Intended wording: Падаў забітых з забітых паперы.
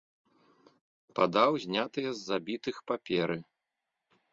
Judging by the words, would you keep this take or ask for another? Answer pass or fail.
fail